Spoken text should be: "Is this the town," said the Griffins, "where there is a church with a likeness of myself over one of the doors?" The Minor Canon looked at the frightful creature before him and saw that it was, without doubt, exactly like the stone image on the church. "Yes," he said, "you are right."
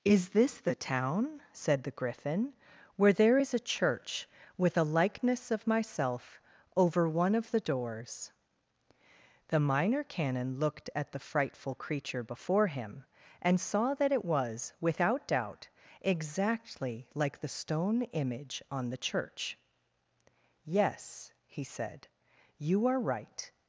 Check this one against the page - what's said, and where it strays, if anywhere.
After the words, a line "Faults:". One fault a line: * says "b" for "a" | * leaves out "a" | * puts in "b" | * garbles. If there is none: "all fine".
"Is this the town," said the Griffin, "where there is a church with a likeness of myself over one of the doors?" The Minor Canon looked at the frightful creature before him and saw that it was, without doubt, exactly like the stone image on the church. "Yes," he said, "you are right."
Faults:
* says "Griffin" for "Griffins"